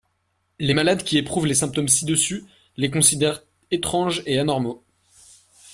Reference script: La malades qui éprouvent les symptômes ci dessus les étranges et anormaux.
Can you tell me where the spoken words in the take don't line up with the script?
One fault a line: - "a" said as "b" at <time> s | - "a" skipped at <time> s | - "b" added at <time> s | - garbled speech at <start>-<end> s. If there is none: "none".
- "La" said as "Les" at 0.6 s
- "considèrent" added at 2.9 s